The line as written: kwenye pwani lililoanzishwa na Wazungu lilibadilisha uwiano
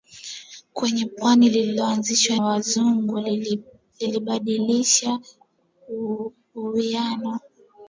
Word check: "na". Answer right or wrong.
wrong